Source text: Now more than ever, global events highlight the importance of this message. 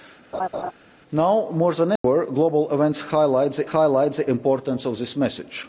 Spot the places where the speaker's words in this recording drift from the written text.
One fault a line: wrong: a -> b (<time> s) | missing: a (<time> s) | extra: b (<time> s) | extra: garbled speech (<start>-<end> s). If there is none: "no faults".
extra: highlight the (3.6 s)